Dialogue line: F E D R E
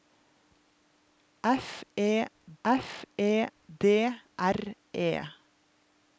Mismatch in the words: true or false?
true